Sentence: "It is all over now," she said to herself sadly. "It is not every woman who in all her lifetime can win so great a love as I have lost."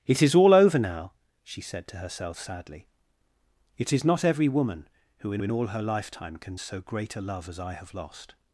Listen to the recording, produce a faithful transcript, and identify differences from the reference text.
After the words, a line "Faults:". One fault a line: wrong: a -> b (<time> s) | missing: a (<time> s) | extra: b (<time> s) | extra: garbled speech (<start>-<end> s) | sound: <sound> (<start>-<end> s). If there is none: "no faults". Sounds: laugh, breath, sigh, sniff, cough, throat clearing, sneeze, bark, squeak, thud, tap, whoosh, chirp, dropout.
"It is all over now," she said to herself sadly. "It is not every woman who in in all her lifetime can so great a love as I have lost."
Faults:
extra: in (5.4 s)
missing: win (6.6 s)